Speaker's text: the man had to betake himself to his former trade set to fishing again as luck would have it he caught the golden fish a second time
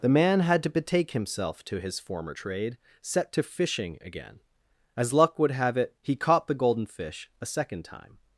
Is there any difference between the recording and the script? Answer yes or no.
no